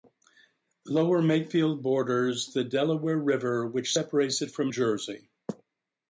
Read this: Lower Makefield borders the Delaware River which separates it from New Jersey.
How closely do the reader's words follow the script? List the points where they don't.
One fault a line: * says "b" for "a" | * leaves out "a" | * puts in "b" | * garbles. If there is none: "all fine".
* leaves out "New"